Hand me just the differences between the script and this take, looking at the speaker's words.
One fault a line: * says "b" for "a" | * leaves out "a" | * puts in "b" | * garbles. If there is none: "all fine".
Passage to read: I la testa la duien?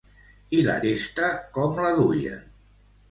* puts in "com"